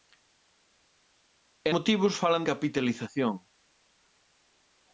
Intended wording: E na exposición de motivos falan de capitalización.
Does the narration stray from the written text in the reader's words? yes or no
yes